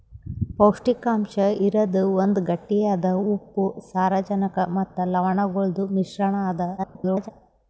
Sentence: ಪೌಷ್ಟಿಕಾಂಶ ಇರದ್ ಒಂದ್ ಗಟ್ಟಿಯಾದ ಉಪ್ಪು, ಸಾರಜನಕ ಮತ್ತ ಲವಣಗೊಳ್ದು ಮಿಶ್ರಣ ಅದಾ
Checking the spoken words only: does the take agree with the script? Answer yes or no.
no